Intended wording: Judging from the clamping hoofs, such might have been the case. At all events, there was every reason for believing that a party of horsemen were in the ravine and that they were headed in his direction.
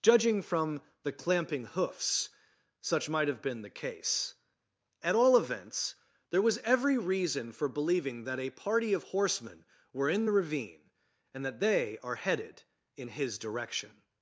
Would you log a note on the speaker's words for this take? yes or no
yes